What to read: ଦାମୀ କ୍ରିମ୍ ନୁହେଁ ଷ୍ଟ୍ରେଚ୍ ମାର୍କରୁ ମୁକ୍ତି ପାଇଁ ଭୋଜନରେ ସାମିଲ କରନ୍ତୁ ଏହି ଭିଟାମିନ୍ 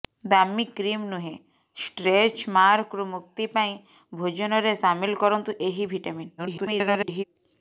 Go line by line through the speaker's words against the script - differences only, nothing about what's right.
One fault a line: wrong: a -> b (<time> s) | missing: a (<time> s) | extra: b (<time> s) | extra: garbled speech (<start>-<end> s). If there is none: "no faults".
extra: garbled speech (6.4-7.2 s)